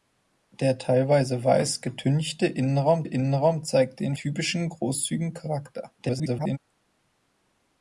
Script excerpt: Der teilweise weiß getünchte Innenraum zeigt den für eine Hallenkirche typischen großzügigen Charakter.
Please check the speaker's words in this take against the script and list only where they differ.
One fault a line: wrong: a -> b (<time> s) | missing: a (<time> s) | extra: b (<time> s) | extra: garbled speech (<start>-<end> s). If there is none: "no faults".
extra: Innenraum (3.0 s)
missing: für eine Hallenkirche (4.1 s)
extra: garbled speech (6.0-6.6 s)